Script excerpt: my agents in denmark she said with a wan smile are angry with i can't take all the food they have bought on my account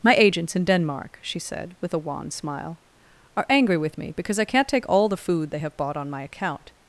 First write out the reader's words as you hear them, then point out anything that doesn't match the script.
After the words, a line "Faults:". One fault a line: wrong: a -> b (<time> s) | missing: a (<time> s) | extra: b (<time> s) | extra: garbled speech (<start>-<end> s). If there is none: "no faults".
my agents in denmark she said with a wan smile are angry with me because i can't take all the food they have bought on my account
Faults:
extra: me because (4.0 s)